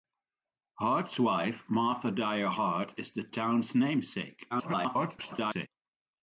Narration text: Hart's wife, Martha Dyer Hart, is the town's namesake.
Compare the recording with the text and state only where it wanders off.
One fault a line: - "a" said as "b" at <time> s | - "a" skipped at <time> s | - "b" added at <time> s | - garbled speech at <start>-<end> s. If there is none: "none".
- garbled speech at 4.5-5.7 s